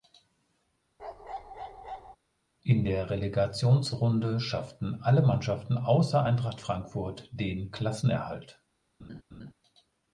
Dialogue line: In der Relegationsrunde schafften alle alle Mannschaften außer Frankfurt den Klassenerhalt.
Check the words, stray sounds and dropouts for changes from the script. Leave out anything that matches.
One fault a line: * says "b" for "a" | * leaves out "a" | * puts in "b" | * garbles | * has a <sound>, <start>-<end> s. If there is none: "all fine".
* has a bark, 1.0-2.2 s
* leaves out "alle"
* puts in "Eintracht"
* has a laugh, 9.0-9.5 s